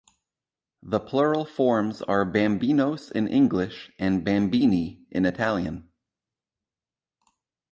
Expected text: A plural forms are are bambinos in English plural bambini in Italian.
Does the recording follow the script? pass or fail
fail